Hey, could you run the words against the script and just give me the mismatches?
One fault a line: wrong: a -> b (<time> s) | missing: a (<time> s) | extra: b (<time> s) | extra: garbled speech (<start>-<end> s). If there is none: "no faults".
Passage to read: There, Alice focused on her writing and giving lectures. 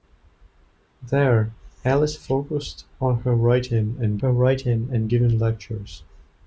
extra: her writing and (4.2 s)